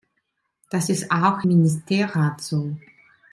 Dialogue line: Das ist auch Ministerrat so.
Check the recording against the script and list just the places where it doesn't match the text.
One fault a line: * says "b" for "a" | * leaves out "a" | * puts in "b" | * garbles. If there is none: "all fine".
all fine